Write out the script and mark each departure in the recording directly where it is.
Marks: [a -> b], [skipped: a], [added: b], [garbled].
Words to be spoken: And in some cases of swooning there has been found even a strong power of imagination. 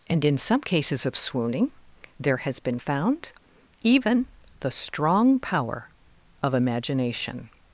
And in some cases of swooning there has been found even [a -> the] strong power of imagination.